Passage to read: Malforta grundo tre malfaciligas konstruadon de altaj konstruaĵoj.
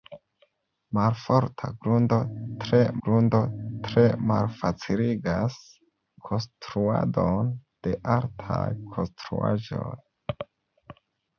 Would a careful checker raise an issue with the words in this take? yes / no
yes